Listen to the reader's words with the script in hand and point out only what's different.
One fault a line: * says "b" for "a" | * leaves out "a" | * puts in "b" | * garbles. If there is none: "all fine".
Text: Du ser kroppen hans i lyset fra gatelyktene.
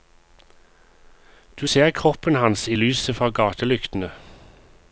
all fine